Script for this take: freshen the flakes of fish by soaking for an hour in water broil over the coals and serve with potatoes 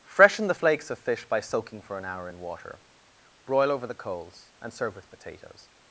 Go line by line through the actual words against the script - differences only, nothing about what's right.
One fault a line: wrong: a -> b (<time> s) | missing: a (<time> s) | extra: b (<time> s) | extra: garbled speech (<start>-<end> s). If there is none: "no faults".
no faults